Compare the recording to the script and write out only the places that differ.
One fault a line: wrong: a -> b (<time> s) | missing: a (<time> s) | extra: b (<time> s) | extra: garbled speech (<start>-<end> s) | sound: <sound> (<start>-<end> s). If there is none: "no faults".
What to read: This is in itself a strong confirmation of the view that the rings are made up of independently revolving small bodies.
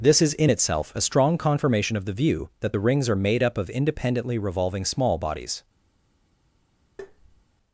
sound: tap (7.0-7.4 s)